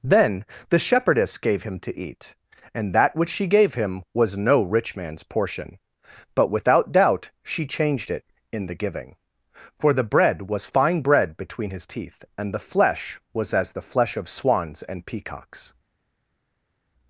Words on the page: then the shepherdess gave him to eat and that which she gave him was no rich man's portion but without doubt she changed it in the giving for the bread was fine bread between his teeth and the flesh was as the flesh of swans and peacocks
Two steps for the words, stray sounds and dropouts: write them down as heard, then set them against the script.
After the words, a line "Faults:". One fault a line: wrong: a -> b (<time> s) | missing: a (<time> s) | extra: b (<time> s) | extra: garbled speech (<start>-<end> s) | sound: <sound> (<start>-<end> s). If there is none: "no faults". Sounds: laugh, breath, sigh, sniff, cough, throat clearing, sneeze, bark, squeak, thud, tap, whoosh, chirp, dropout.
then the shepherdess gave him to eat and that which she gave him was no rich man's portion but without doubt she changed it in the giving for the bread was fine bread between his teeth and the flesh was as the flesh of swans and peacocks
Faults:
no faults